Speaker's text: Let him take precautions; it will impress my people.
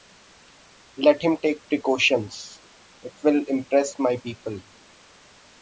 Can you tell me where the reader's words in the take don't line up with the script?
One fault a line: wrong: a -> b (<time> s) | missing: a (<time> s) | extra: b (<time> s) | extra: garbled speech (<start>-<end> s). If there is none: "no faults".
no faults